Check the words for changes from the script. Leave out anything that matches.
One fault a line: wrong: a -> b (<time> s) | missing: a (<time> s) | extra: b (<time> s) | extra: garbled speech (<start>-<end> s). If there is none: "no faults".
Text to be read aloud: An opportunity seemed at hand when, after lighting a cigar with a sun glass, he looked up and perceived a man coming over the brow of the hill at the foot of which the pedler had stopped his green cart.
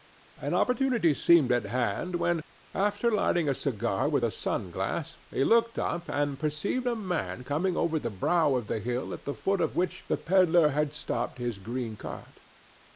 no faults